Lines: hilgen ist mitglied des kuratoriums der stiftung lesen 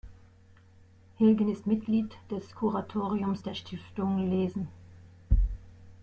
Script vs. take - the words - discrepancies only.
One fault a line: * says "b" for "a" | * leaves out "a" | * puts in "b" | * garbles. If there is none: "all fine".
all fine